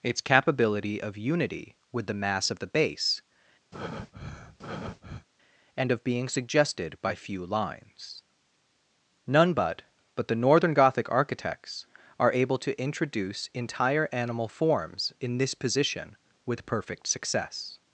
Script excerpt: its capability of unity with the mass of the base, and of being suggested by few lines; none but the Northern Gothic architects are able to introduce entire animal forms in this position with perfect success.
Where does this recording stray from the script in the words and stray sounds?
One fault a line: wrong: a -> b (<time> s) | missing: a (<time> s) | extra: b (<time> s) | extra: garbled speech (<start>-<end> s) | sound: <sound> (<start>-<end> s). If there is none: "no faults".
sound: breath (3.7-5.3 s)
extra: but (10.1 s)